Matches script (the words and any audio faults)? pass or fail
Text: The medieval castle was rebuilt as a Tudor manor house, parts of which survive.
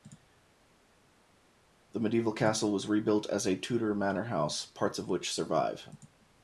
pass